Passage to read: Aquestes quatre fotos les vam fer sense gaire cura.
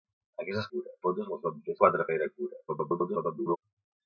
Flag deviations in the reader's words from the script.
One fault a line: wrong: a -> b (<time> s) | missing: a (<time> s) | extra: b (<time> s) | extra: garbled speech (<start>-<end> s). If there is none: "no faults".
wrong: quatre -> cura (0.7 s)
wrong: sense -> quatre (1.8 s)
extra: garbled speech (2.7-3.6 s)